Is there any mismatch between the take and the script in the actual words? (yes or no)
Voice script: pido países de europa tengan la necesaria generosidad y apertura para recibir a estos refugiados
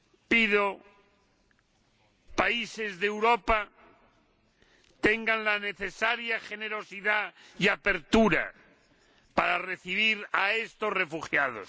no